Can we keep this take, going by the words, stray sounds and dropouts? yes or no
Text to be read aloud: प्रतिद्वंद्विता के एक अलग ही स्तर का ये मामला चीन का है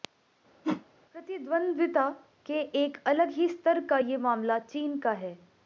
no